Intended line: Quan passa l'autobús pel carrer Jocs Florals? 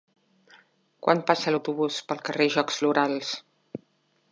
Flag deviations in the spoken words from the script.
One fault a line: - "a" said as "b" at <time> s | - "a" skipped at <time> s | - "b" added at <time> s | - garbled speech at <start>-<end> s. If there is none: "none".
none